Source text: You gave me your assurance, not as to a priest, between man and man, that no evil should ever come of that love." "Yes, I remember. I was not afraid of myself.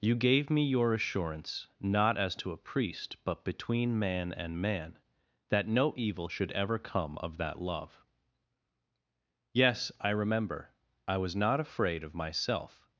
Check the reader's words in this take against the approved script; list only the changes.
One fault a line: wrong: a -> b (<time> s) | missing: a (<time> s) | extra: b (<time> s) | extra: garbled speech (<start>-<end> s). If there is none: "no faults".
extra: but (3.2 s)